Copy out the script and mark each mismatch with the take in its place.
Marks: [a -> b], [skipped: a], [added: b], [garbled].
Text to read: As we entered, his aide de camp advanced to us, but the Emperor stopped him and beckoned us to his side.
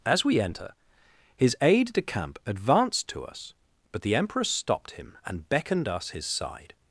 As we [entered, -> enter] his aide de camp advanced to us, but the Emperor stopped him and beckoned us [skipped: to] his side.